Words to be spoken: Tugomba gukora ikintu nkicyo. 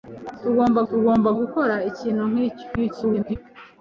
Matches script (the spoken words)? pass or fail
fail